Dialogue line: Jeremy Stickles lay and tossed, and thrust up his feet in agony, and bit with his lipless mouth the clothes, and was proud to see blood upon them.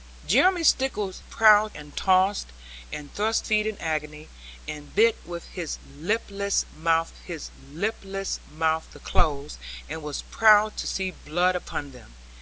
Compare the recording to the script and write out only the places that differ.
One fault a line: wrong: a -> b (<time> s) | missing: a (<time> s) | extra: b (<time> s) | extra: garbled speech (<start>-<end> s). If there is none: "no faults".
wrong: lay -> proud (1.2 s)
missing: up his (3.5 s)
extra: his lipless mouth (7.2 s)